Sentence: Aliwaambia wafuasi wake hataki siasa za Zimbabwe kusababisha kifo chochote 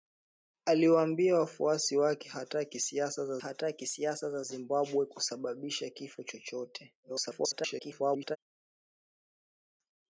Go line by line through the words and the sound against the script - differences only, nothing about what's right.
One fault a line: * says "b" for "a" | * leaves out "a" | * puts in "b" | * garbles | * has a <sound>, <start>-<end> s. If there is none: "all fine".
* puts in "hataki siasa za"
* garbles